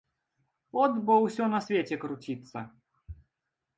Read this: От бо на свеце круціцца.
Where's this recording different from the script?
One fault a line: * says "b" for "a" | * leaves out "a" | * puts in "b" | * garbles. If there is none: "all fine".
* puts in "ўсё"